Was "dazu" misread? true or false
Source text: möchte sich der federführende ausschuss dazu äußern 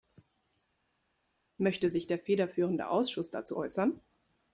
false